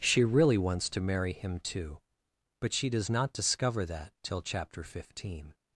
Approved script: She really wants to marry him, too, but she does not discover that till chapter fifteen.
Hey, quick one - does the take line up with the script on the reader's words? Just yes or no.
yes